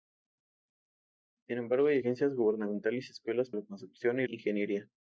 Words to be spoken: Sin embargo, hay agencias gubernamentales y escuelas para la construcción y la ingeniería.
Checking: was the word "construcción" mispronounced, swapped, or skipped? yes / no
no